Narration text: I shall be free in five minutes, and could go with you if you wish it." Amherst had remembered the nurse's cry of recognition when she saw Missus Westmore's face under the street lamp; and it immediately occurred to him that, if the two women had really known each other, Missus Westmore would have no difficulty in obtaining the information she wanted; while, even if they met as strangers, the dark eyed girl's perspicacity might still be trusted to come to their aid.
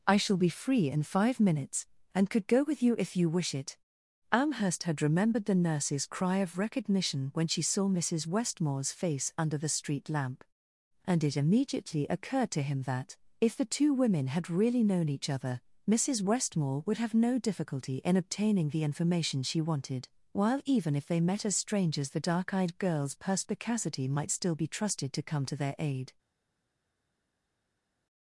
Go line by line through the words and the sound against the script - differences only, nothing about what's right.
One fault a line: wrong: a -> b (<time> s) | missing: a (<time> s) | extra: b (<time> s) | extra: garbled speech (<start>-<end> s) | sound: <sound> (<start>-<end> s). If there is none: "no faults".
no faults